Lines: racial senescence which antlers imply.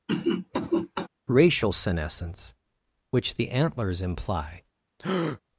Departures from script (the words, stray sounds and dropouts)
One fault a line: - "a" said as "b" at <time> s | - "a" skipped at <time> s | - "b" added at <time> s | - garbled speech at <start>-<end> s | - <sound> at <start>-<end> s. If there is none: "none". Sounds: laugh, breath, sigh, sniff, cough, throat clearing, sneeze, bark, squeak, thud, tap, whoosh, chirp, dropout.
- cough at 0.1-1.1 s
- "the" added at 3.3 s
- breath at 5.0-5.4 s